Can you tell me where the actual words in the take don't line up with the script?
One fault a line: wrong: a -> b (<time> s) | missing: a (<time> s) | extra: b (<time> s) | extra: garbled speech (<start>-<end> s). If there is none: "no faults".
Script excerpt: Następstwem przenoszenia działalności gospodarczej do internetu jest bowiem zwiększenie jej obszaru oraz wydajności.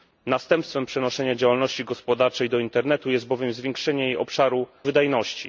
missing: oraz (4.7 s)